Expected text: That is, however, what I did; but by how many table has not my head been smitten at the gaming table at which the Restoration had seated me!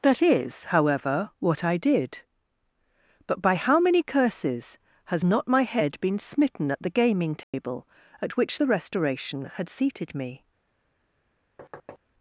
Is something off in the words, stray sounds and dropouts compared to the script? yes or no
yes